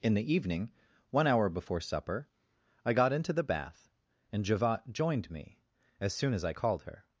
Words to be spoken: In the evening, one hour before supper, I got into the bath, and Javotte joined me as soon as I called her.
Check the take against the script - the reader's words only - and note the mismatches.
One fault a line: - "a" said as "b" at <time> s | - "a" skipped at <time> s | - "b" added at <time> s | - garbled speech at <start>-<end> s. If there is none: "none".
none